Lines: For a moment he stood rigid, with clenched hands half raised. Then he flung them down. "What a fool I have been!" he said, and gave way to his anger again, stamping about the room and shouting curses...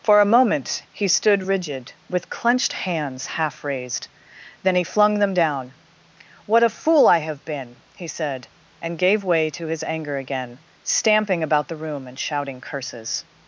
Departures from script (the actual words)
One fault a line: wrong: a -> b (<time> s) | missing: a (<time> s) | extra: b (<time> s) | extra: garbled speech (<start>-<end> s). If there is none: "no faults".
no faults